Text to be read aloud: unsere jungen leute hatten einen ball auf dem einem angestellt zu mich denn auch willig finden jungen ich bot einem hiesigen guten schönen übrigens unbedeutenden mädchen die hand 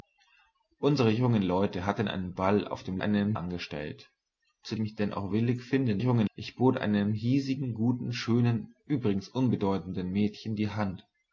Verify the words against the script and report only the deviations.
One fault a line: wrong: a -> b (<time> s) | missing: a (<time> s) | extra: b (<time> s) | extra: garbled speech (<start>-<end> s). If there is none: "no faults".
no faults